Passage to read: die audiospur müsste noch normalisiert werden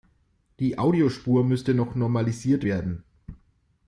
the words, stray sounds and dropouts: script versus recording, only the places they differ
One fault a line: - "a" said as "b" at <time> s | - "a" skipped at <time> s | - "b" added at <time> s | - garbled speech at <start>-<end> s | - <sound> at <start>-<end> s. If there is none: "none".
none